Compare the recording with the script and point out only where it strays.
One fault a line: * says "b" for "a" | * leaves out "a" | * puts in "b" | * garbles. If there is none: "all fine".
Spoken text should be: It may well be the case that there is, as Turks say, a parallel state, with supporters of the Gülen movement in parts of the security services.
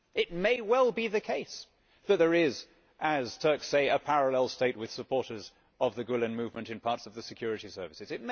all fine